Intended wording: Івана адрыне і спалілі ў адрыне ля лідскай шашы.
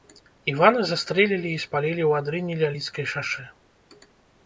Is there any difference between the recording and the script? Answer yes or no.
yes